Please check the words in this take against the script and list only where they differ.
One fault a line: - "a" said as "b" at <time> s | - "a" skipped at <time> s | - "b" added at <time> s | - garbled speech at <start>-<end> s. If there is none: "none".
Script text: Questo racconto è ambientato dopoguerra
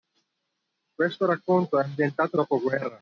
none